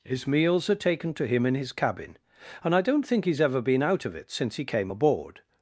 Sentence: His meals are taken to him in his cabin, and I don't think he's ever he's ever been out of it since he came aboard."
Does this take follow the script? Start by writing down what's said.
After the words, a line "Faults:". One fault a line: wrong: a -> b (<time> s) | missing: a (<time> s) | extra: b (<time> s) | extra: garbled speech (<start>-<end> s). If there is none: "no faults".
His meals are taken to him in his cabin, and I don't think he's ever been out of it since he came aboard."
Faults:
missing: he's ever (3.6 s)